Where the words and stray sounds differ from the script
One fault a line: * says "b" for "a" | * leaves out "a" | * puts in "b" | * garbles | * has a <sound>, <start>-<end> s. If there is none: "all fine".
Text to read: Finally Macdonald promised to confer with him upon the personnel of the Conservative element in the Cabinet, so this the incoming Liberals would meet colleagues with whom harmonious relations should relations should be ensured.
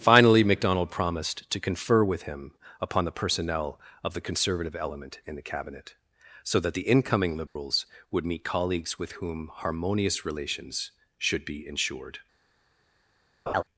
* says "that" for "this"
* has a dropout, 7.5-7.6 s
* leaves out "relations should"
* has a laugh, 13.5-13.6 s